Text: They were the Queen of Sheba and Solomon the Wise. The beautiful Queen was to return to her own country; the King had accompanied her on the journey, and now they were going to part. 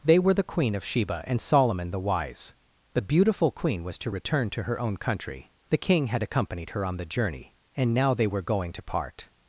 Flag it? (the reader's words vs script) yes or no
no